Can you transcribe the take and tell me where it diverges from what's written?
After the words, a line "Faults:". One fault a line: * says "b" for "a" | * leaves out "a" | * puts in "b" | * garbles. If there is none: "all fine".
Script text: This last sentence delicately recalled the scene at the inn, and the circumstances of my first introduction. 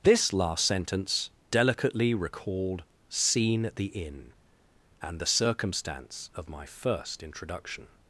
This last sentence delicately recalled scene at the inn, and the circumstance of my first introduction.
Faults:
* leaves out "the"
* says "circumstance" for "circumstances"